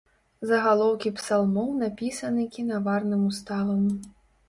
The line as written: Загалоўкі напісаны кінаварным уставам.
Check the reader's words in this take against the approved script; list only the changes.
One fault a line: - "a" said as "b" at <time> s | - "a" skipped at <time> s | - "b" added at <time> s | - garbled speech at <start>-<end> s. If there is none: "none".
- "псалмоў" added at 1.2 s